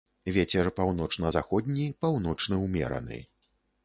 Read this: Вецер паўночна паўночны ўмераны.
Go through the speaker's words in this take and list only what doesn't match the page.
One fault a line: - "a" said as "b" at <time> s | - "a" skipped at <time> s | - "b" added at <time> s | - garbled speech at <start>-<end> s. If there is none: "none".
- "заходні" added at 1.3 s